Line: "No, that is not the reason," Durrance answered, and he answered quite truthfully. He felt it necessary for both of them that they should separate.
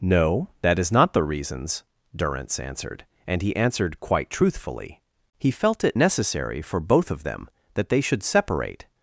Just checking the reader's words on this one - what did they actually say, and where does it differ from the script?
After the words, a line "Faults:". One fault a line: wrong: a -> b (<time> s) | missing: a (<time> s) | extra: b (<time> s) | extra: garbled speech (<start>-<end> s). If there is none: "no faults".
"No, that is not the reasons," Durrance answered, and he answered quite truthfully. He felt it necessary for both of them that they should separate.
Faults:
wrong: reason -> reasons (1.2 s)